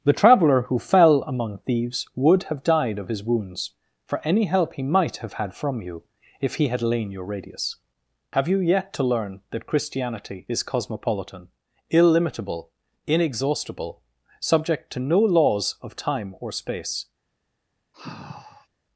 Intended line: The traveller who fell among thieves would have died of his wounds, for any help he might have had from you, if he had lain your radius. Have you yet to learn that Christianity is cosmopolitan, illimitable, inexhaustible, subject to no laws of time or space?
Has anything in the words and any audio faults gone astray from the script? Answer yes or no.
yes